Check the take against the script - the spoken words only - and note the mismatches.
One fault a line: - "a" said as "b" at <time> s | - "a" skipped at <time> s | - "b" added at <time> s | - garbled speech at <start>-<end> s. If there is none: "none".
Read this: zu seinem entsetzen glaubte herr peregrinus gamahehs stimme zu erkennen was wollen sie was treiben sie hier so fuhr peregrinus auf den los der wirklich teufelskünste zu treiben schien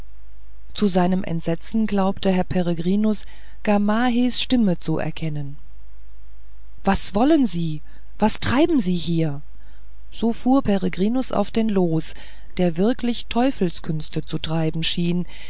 none